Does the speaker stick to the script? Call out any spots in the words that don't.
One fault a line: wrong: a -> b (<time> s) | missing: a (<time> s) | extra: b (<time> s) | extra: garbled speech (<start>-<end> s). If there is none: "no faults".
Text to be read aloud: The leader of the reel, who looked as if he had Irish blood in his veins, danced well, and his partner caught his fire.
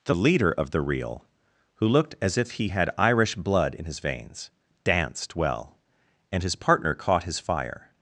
no faults